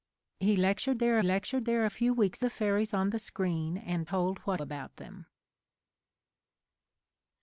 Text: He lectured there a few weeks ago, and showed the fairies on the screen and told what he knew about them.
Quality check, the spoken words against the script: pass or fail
fail